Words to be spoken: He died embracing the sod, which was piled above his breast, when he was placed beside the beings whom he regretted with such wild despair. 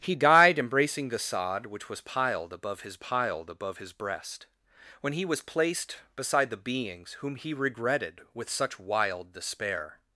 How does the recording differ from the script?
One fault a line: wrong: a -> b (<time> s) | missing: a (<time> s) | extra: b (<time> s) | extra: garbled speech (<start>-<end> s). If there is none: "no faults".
extra: piled above his (3.0 s)